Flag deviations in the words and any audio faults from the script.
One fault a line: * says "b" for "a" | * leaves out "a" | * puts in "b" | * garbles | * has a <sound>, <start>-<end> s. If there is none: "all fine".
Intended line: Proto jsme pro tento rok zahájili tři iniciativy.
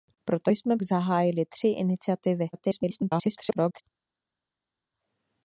* leaves out "pro tento rok"
* garbles